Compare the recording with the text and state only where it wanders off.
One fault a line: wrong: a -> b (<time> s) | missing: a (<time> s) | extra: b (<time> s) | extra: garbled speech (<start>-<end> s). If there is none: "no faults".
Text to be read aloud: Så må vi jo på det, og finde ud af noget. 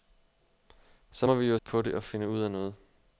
no faults